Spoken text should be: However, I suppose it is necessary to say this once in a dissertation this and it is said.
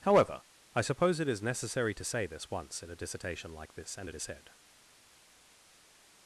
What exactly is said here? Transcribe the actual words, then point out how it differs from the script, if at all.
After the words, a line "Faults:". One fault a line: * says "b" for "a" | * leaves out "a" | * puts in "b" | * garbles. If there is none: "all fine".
However, I suppose it is necessary to say this once in a dissertation like this and it is said.
Faults:
* puts in "like"